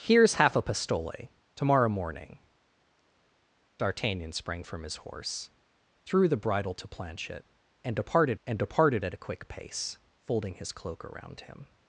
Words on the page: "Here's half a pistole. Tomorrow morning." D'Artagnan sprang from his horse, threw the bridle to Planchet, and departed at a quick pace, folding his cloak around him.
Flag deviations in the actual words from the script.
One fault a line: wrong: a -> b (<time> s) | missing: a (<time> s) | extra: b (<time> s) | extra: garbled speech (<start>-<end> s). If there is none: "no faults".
extra: and departed (8.5 s)